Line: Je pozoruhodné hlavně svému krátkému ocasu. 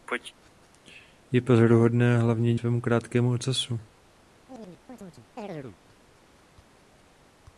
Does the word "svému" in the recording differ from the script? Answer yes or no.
no